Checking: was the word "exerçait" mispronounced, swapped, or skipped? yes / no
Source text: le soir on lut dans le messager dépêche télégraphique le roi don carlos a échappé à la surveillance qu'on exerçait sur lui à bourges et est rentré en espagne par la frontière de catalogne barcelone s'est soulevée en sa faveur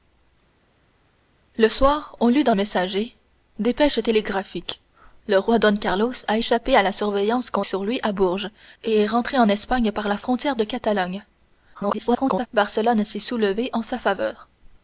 yes